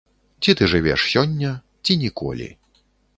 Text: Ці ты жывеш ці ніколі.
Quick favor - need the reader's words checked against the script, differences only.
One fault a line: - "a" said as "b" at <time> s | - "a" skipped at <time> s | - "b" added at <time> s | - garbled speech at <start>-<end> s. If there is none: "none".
- "сёння" added at 1.1 s